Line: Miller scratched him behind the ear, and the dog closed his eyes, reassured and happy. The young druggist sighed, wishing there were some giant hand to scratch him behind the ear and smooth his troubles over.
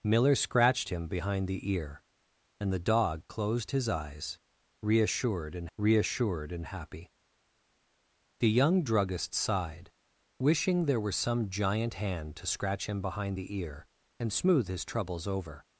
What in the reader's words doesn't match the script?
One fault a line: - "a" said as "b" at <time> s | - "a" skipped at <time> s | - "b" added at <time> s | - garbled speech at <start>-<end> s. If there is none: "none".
- "reassured and" added at 5.8 s